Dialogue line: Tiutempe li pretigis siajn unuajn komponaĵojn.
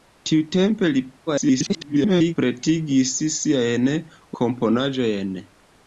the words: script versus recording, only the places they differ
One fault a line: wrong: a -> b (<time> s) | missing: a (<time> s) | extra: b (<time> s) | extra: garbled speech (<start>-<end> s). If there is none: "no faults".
extra: garbled speech (1.3-2.3 s)
missing: unuajn (3.9 s)